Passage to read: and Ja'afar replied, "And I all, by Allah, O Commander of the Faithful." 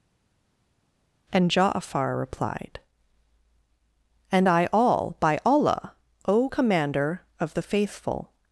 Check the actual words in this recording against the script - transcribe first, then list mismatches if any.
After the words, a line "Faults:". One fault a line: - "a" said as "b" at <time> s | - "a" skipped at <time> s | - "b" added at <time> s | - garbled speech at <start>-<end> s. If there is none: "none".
and Ja'afar replied, "And I all, by Allah, O Commander of the Faithful."
Faults:
none